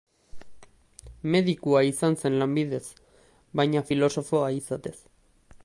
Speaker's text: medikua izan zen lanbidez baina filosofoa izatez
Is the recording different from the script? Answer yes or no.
no